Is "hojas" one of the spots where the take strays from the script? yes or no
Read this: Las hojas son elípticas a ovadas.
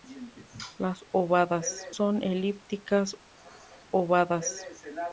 yes